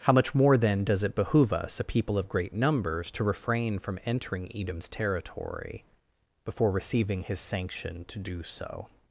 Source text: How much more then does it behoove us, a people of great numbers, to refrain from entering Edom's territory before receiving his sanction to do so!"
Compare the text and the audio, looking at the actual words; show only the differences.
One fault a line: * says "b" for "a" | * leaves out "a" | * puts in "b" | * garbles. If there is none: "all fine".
all fine